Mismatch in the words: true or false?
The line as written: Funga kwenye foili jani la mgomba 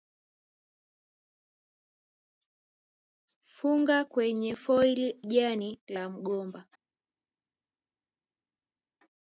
false